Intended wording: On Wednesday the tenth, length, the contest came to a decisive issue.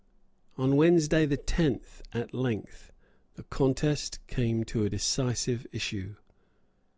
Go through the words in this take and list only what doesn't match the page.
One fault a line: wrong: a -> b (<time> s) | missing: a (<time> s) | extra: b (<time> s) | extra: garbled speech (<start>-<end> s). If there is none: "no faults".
extra: at (2.1 s)